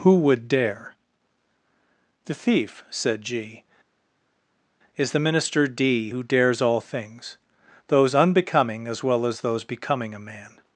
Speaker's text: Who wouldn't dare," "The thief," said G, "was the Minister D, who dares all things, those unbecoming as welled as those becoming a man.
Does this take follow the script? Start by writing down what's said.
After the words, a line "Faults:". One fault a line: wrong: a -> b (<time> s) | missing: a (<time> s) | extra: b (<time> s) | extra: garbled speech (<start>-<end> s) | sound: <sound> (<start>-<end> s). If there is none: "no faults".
Who would dare," "The thief," said G, "is the Minister D, who dares all things, those unbecoming as well as those becoming a man.
Faults:
wrong: wouldn't -> would (0.2 s)
wrong: was -> is (5.0 s)
wrong: welled -> well (9.0 s)